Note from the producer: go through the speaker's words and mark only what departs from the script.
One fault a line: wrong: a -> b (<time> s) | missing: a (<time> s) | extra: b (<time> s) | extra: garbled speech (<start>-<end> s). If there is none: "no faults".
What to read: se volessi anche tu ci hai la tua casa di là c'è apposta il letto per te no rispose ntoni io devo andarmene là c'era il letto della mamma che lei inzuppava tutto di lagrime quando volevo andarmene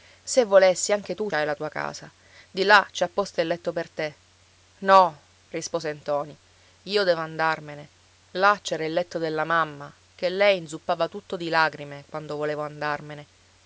missing: ci (1.3 s)